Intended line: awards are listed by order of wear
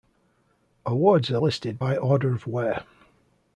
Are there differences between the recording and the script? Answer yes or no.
no